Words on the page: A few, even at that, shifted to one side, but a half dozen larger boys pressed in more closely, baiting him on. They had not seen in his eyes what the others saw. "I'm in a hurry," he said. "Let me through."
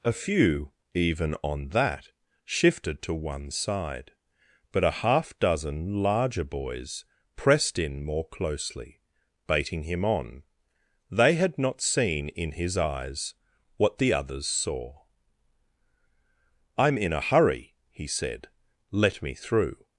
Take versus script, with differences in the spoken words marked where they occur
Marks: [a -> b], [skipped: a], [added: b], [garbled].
A few, even [at -> on] that, shifted to one side, but a half dozen larger boys pressed in more closely, baiting him on. They had not seen in his eyes what the others saw. "I'm in a hurry," he said. "Let me through."